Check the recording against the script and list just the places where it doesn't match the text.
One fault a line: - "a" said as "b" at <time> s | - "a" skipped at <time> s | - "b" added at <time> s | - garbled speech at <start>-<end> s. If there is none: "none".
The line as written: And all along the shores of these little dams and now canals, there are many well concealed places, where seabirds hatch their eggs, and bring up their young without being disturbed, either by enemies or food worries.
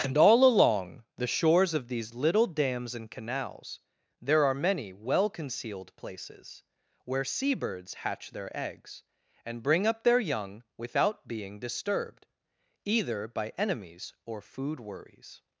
- "now" skipped at 3.1 s